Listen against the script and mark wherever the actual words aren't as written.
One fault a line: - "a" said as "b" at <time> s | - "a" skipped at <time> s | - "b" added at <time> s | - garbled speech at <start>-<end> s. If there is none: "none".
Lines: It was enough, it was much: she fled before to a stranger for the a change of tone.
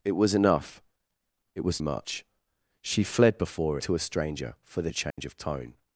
none